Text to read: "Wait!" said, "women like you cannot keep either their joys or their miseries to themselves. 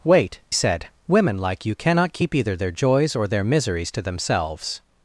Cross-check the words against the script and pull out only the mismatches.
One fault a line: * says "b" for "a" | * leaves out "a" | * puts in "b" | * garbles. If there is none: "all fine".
all fine